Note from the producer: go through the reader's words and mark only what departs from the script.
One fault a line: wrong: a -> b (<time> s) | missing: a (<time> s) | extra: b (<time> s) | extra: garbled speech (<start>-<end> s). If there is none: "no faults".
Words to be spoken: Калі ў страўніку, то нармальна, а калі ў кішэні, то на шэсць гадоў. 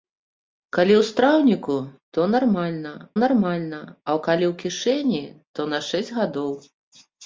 extra: нармальна (3.2 s)